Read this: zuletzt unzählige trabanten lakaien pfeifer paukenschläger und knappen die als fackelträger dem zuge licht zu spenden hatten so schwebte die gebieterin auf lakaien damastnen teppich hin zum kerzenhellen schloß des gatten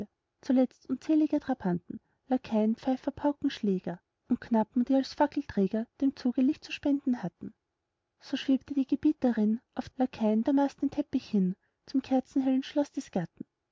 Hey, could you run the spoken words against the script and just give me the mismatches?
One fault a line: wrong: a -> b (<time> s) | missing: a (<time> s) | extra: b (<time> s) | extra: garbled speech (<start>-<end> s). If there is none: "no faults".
no faults